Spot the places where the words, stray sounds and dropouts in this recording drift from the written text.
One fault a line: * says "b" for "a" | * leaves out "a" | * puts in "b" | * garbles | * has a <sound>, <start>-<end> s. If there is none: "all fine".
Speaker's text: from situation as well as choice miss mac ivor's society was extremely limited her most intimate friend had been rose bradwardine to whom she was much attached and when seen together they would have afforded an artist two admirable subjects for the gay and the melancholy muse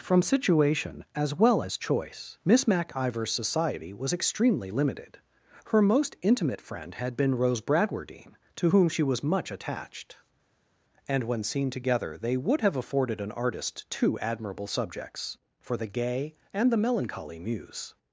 all fine